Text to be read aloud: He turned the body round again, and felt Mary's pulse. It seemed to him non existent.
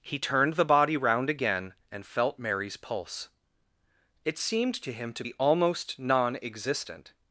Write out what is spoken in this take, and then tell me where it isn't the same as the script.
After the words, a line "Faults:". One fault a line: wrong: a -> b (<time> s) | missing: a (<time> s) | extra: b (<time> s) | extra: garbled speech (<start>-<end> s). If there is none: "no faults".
He turned the body round again, and felt Mary's pulse. It seemed to him to be almost non existent.
Faults:
extra: to be almost (5.1 s)